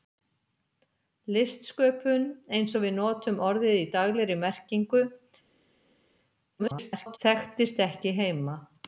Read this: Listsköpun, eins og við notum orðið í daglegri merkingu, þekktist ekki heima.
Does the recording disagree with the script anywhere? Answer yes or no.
yes